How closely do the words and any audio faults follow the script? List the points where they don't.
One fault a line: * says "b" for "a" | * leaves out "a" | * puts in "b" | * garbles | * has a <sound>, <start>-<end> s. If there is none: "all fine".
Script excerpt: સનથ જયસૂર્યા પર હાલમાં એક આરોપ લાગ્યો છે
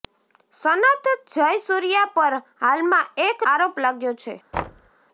* has a thud, 4.5-4.9 s